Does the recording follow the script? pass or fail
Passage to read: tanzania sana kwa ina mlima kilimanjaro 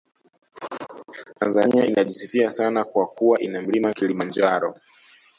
fail